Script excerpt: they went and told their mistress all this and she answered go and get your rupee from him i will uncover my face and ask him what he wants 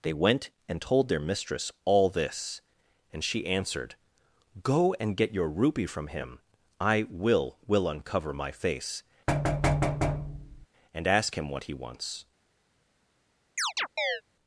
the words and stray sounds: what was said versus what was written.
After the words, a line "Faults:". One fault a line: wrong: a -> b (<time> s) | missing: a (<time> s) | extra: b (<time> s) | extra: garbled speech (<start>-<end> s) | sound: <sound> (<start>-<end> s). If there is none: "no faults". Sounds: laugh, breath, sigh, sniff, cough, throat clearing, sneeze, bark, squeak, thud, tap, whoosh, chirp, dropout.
they went and told their mistress all this and she answered go and get your rupee from him i will will uncover my face and ask him what he wants
Faults:
extra: will (7.7 s)
sound: thud (9.3-10.7 s)
sound: chirp (13.6-14.2 s)